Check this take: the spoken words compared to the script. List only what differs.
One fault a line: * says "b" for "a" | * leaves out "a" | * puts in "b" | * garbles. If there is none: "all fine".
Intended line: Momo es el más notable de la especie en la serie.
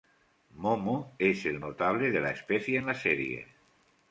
* leaves out "más"